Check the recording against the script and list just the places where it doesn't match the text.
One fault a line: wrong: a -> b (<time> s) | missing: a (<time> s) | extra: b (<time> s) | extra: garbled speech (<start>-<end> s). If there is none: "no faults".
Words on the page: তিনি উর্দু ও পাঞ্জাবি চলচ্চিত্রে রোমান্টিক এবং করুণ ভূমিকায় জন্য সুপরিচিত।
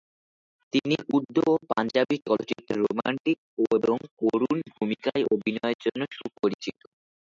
extra: অভিনয়ের (5.3 s)